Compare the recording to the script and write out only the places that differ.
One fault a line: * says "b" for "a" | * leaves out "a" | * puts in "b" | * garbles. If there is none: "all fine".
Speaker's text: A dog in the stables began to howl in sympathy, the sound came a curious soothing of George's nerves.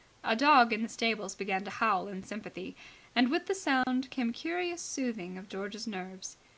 * puts in "and with"